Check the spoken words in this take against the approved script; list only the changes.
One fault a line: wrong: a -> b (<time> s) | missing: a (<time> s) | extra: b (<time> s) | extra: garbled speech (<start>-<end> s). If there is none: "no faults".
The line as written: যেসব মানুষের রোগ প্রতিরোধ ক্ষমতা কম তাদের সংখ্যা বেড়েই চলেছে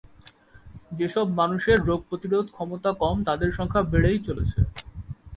no faults